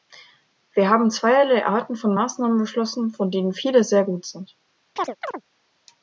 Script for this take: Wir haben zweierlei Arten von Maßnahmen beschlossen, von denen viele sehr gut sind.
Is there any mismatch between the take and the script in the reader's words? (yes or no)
no